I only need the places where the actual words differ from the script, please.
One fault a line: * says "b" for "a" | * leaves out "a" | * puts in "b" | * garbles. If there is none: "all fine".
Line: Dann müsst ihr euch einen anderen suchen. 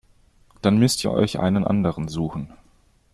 all fine